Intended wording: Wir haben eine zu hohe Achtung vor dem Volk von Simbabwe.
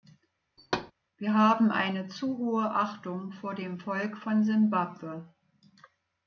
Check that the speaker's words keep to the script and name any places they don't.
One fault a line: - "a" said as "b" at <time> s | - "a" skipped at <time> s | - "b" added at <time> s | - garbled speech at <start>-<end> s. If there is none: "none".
none